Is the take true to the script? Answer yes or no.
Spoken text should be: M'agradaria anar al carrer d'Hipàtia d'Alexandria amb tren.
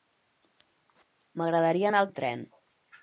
no